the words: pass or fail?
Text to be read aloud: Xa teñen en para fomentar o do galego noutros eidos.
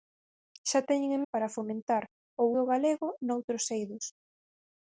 pass